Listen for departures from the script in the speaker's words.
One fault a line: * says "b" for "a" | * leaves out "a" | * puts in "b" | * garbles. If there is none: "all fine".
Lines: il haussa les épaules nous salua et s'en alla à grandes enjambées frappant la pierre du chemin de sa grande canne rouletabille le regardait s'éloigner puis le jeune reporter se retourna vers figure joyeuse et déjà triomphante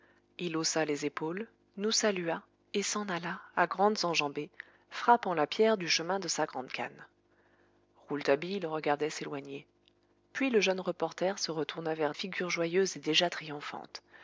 all fine